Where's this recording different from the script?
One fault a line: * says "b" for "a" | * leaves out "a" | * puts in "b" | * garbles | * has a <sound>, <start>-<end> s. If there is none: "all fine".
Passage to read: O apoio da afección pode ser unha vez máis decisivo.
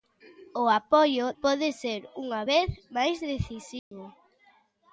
* leaves out "da afección"
* has a dropout, 3.8-3.9 s